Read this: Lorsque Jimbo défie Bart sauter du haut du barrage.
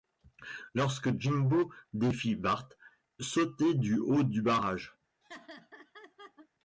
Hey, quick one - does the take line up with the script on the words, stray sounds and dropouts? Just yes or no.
no